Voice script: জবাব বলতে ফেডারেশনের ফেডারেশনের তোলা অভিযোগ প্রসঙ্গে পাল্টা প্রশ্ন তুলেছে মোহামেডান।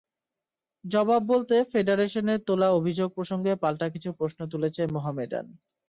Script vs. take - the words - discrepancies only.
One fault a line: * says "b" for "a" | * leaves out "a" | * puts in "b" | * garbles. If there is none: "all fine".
* leaves out "ফেডারেশনের"
* puts in "কিছু"